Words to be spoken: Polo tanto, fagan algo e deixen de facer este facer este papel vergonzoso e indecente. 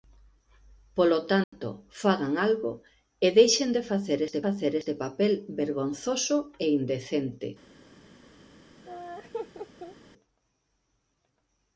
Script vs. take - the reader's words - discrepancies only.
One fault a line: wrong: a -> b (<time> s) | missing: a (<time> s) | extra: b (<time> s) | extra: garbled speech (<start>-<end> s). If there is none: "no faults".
no faults